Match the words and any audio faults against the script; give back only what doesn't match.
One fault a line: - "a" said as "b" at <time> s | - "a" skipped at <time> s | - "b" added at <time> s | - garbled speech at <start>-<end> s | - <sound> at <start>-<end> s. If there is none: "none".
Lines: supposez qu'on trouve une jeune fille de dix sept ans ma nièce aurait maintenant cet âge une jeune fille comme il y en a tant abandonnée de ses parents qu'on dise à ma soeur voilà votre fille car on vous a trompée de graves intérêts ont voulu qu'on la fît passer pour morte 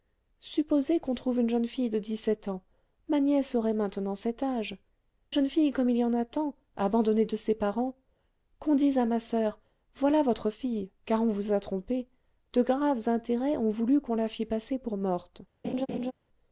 - "une" skipped at 4.8 s
- laugh at 15.6-16.1 s